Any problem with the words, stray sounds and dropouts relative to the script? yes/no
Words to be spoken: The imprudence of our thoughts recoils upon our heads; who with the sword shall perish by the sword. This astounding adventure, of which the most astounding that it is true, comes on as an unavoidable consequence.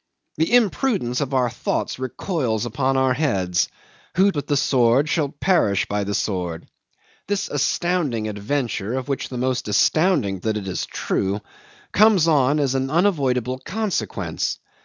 no